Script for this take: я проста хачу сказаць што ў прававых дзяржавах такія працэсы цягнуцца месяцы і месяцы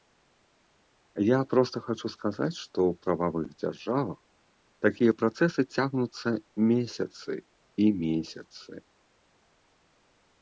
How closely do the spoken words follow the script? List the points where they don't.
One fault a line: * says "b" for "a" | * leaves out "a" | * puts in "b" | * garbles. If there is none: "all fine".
all fine